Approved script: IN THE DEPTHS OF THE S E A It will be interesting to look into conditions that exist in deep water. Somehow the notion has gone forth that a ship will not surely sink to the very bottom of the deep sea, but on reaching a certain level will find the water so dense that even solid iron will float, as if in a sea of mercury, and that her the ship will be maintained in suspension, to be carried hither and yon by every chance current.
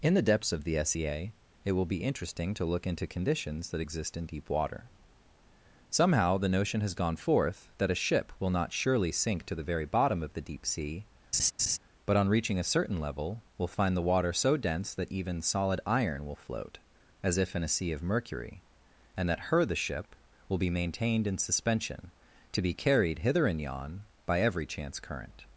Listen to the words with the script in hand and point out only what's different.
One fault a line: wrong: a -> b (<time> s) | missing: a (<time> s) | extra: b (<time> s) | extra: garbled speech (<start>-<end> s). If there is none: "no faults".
no faults